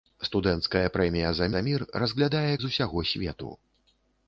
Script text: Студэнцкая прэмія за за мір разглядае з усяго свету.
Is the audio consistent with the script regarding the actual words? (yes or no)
yes